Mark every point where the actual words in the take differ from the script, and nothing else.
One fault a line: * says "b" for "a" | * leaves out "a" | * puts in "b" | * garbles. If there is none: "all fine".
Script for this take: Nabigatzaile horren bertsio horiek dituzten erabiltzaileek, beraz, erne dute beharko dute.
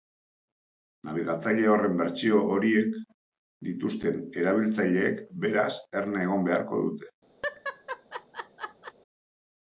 * says "egon" for "dute"